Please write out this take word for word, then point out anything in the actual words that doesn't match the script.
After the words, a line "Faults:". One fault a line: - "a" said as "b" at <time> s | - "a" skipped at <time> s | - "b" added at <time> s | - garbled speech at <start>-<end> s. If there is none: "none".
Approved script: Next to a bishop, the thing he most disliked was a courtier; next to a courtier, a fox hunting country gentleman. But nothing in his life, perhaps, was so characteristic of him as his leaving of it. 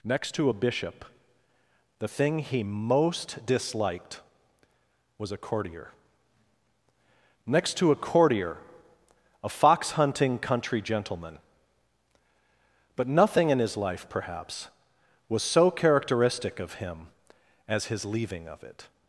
Next to a bishop, the thing he most disliked was a courtier; next to a courtier, a fox hunting country gentleman. But nothing in his life, perhaps, was so characteristic of him as his leaving of it.
Faults:
none